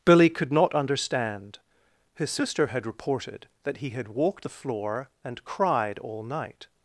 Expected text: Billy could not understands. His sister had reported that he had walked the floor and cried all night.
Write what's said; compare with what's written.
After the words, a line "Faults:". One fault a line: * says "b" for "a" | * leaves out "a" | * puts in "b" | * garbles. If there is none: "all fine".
Billy could not understand. His sister had reported that he had walked the floor and cried all night.
Faults:
* says "understand" for "understands"